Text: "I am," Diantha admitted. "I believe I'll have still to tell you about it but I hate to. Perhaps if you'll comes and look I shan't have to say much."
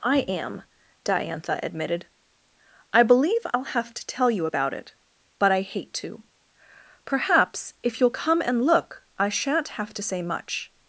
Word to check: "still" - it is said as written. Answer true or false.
false